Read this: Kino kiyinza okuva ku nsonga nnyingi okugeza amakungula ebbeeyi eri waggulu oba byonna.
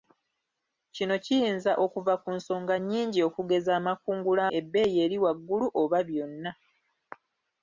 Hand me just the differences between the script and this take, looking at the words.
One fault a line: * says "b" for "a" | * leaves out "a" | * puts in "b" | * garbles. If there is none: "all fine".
all fine